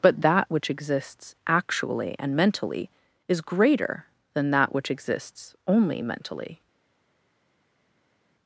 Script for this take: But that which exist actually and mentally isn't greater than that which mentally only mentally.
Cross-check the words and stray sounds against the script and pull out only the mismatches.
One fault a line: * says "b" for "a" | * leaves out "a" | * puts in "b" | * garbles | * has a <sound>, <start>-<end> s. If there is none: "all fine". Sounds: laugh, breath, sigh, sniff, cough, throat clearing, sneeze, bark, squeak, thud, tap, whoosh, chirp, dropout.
* says "exists" for "exist"
* says "is" for "isn't"
* says "exists" for "mentally"